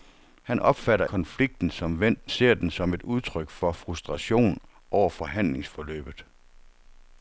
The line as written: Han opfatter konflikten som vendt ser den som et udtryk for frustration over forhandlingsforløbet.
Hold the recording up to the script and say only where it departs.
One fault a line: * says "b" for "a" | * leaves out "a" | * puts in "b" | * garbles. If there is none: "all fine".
all fine